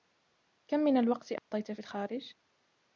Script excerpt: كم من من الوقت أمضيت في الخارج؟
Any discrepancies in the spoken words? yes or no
yes